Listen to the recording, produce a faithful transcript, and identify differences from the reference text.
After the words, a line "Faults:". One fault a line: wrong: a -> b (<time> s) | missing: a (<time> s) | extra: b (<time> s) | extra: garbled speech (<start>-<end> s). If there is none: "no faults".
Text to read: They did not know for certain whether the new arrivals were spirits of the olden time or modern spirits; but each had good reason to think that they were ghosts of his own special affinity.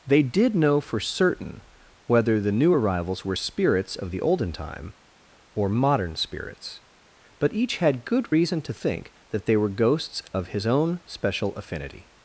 They did know for certain whether the new arrivals were spirits of the olden time or modern spirits; but each had good reason to think that they were ghosts of his own special affinity.
Faults:
missing: not (0.6 s)